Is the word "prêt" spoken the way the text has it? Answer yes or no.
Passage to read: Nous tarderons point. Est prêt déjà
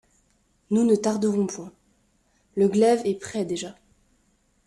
yes